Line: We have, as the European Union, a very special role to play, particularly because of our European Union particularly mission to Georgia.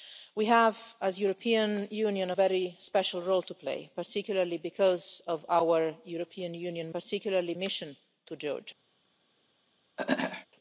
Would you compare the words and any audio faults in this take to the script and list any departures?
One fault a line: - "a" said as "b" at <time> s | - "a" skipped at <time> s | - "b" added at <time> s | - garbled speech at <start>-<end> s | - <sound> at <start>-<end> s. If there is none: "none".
- throat clearing at 10.0-10.5 s